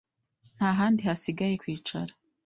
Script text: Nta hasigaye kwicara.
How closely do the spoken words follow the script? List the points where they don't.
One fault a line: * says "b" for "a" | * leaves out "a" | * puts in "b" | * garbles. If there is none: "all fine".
* puts in "handi"